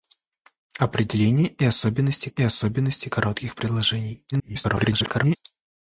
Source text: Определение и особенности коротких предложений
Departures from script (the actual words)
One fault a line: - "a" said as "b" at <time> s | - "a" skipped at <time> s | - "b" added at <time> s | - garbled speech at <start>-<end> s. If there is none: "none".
- "и особенности" added at 2.3 s
- garbled speech at 4.3-5.4 s